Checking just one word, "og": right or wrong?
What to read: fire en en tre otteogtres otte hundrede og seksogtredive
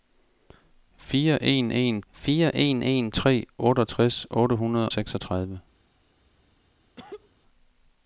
wrong